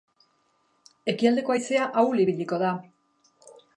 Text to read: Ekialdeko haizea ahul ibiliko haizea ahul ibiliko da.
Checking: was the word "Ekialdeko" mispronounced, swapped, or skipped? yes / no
no